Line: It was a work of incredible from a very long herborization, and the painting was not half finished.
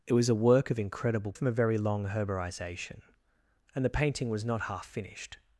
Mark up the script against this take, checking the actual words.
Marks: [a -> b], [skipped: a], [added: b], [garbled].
It was a work of incredible from a very long herborization, and the painting was not half finished.